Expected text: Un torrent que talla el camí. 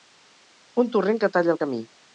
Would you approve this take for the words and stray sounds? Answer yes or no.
yes